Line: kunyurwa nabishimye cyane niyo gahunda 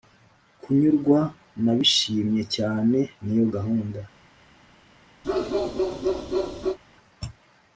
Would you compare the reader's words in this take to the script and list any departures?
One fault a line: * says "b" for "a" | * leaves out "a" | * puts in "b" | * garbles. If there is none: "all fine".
all fine